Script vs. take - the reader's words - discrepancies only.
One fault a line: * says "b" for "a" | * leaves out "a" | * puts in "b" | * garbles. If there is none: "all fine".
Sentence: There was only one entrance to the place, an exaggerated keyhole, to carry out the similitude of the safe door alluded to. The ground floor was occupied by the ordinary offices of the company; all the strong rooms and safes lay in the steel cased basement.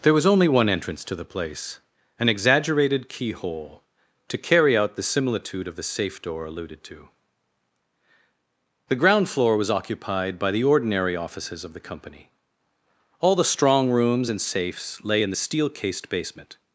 all fine